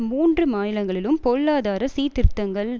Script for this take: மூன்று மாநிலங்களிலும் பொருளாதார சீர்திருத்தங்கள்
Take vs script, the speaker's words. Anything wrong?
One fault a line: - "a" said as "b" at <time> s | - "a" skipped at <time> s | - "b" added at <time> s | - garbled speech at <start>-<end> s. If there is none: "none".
none